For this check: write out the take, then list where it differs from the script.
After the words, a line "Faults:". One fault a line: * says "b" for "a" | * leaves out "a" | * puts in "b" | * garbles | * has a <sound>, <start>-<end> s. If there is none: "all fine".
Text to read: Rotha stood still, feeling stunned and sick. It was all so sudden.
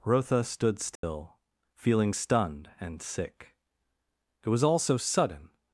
Rotha stood still, feeling stunned and sick. It was all so sudden.
Faults:
* has a dropout, 1.0-1.0 s